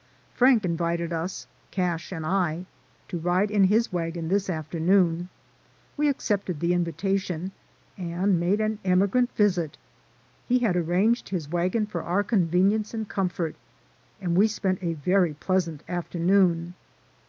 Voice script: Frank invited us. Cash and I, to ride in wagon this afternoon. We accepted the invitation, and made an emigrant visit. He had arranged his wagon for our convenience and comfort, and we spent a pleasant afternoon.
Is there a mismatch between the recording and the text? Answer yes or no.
yes